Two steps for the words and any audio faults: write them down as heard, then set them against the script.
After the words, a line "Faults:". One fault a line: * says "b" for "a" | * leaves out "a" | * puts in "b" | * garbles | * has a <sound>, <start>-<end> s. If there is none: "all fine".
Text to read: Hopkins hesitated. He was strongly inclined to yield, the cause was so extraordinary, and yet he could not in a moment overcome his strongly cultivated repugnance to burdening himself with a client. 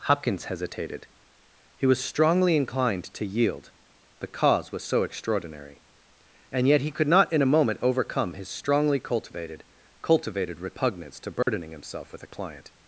Hopkins hesitated. He was strongly inclined to yield, the cause was so extraordinary, and yet he could not in a moment overcome his strongly cultivated cultivated repugnance to burdening himself with a client.
Faults:
* puts in "cultivated"
* has a dropout, 11.4-11.5 s